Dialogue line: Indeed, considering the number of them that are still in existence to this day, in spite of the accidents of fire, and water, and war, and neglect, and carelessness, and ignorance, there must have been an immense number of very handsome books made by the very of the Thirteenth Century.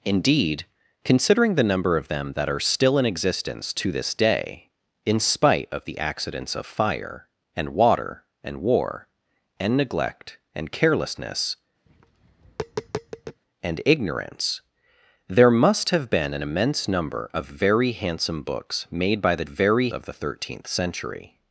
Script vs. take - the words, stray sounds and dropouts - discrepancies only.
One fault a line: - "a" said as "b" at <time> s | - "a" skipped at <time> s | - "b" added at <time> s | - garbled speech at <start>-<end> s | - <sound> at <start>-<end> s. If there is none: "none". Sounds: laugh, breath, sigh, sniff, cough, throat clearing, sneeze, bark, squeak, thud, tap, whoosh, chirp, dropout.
- tap at 11.9-13.4 s